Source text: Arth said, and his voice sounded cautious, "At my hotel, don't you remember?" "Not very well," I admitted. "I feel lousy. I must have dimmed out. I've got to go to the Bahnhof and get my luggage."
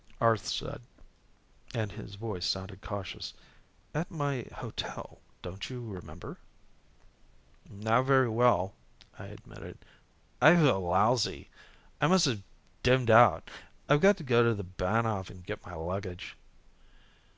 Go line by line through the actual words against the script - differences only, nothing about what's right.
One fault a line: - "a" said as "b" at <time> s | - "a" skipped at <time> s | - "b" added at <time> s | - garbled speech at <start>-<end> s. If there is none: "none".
none